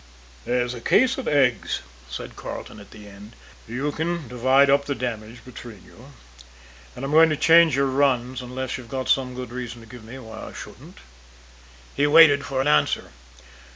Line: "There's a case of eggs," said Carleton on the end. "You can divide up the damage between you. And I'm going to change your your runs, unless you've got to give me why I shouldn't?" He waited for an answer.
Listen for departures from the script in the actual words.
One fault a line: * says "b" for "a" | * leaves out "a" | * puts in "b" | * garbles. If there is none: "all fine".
* says "at" for "on"
* leaves out "your"
* puts in "some good reason"